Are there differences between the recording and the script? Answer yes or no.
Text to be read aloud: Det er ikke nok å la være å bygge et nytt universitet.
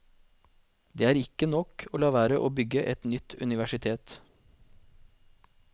no